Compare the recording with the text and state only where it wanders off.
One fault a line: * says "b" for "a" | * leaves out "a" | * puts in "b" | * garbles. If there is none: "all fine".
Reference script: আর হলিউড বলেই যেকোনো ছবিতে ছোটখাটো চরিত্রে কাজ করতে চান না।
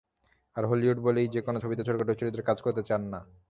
all fine